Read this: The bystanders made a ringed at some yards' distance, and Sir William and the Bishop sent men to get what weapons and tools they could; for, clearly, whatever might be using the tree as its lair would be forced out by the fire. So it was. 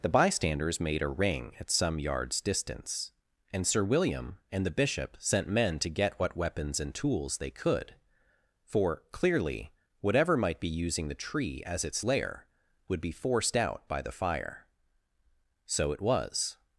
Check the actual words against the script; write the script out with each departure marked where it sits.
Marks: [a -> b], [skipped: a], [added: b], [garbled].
The bystanders made a [ringed -> ring] at some yards' distance, and Sir William and the Bishop sent men to get what weapons and tools they could; for, clearly, whatever might be using the tree as its lair would be forced out by the fire. So it was.